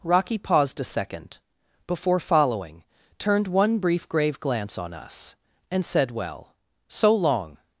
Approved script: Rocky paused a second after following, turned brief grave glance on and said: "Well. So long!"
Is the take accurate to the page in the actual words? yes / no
no